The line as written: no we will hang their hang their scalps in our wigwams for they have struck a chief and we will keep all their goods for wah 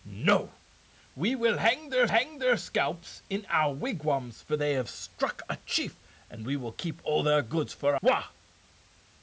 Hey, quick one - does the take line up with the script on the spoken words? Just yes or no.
yes